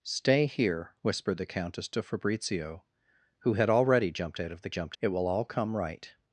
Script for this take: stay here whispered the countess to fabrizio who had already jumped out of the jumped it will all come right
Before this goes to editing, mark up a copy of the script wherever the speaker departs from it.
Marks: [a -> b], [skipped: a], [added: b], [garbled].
stay here whispered the countess to fabrizio who had already jumped out of the jumped it will all come right